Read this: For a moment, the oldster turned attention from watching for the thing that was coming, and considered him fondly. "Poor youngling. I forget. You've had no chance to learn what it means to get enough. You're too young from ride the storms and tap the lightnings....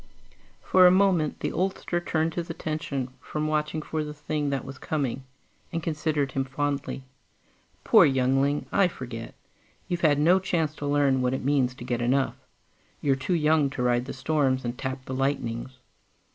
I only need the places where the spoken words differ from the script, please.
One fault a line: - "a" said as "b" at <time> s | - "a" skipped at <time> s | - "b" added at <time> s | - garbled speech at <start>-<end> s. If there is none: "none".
- "his" added at 2.3 s
- "from" said as "to" at 13.7 s